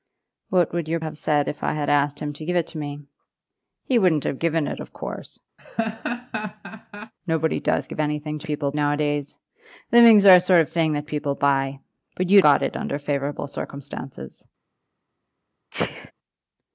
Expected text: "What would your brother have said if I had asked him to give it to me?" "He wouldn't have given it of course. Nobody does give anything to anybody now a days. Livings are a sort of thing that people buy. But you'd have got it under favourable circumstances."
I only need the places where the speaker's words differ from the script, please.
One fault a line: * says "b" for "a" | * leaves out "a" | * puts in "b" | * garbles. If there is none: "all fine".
* leaves out "brother"
* says "people" for "anybody"
* leaves out "have"